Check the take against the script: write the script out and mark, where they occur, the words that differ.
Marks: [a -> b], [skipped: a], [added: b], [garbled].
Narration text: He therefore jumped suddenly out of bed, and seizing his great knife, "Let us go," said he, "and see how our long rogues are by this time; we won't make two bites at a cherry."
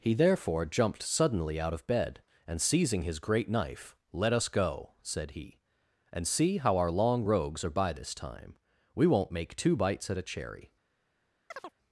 He therefore jumped suddenly out of bed, and seizing his great knife, "Let us go," said he, "and see how our long rogues are by this time; we won't make two bites at a cherry."